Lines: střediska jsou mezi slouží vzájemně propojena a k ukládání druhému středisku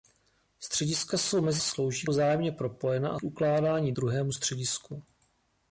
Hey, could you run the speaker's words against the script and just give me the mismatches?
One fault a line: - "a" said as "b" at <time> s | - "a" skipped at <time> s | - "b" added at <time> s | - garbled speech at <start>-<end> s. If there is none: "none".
none